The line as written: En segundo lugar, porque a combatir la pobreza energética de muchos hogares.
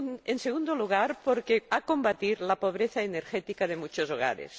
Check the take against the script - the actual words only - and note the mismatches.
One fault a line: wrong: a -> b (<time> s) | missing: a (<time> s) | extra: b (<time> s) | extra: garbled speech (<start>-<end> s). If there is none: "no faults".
no faults